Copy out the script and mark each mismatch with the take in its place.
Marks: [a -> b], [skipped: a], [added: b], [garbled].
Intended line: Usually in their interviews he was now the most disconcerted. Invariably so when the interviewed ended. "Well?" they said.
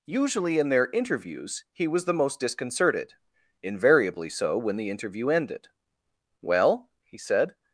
Usually in their interviews he was [skipped: now] the most disconcerted. Invariably so when the [interviewed -> interview] ended. "Well?" [they -> he] said.